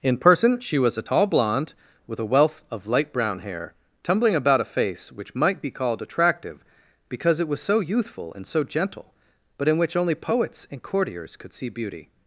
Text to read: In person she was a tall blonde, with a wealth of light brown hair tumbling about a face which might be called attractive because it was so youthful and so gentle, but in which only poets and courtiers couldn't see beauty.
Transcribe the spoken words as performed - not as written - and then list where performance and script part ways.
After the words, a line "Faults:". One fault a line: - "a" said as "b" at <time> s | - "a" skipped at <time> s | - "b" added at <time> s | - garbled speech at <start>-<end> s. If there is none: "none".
In person she was a tall blonde, with a wealth of light brown hair tumbling about a face which might be called attractive because it was so youthful and so gentle, but in which only poets and courtiers could see beauty.
Faults:
- "couldn't" said as "could" at 11.4 s